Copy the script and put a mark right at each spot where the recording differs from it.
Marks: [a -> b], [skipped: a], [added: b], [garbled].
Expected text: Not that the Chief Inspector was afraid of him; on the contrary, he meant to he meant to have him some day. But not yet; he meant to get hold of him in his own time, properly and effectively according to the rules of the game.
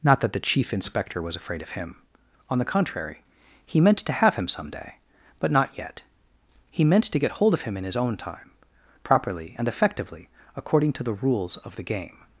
Not that the Chief Inspector was afraid of him; on the contrary, he meant to [skipped: he meant to] have him some day. But not yet; he meant to get hold of him in his own time, properly and effectively according to the rules of the game.